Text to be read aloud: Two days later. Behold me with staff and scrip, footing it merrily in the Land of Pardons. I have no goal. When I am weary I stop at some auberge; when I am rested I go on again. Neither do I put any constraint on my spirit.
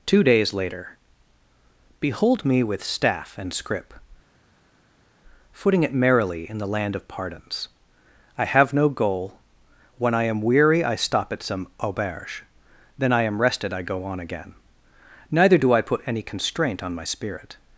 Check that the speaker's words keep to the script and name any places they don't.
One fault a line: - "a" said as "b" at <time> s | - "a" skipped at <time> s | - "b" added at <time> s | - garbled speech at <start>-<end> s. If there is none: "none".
- "when" said as "then" at 13.0 s